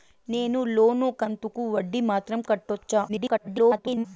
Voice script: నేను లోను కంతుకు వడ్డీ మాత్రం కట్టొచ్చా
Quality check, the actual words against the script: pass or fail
fail